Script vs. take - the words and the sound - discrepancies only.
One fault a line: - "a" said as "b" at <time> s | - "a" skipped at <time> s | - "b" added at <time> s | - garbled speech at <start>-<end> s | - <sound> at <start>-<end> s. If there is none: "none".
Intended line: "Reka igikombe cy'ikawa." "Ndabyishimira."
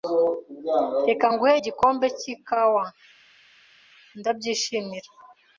- "nguhe" added at 1.3 s